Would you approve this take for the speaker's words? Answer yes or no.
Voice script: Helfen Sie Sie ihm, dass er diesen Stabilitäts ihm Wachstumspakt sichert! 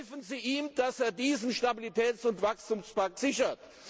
no